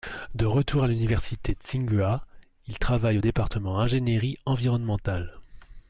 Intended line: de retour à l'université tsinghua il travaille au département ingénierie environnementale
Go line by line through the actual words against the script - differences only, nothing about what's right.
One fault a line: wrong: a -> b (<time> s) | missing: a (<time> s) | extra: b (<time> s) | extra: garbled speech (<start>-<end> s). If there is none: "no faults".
no faults